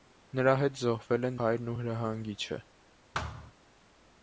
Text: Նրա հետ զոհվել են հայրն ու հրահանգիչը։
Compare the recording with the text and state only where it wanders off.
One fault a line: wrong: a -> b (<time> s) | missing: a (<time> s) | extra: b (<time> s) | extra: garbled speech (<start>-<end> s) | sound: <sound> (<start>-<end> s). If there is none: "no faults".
sound: thud (3.1-3.5 s)